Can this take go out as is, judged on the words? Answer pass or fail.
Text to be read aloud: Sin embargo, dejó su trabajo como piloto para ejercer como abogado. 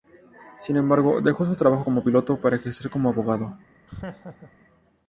pass